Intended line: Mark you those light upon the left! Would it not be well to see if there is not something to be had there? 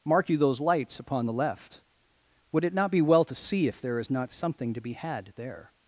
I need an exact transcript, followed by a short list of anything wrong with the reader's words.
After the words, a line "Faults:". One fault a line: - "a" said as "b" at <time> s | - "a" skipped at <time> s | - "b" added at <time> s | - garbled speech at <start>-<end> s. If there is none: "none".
Mark you those lights upon the left! Would it not be well to see if there is not something to be had there?
Faults:
- "light" said as "lights" at 0.6 s